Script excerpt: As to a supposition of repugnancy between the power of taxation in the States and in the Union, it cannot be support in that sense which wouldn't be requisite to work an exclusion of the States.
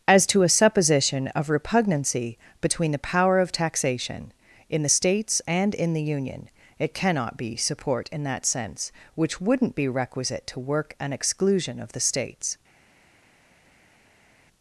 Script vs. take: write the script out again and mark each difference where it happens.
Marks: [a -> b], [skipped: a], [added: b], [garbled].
As to a supposition of repugnancy between the power of taxation in the States and in the Union, it cannot be support in that sense which wouldn't be requisite to work an exclusion of the States.